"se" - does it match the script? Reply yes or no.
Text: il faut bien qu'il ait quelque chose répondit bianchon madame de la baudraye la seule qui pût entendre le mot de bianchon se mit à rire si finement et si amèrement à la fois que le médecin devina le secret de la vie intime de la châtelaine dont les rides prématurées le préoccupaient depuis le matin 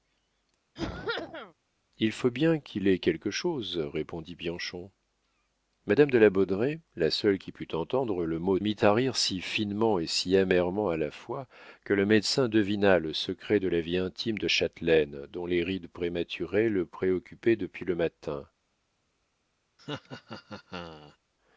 no